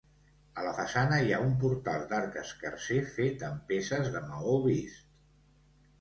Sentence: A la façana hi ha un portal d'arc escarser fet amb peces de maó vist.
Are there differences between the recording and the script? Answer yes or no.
no